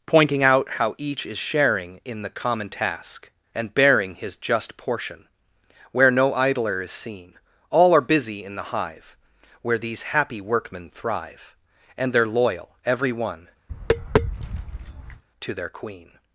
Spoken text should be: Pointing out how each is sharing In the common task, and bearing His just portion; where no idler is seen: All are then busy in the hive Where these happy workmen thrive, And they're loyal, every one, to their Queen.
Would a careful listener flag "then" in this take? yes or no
yes